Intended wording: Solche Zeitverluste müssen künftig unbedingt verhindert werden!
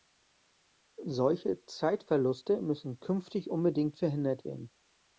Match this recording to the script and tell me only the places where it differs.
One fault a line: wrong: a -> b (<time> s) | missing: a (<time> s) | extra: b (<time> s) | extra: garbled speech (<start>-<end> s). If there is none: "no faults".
no faults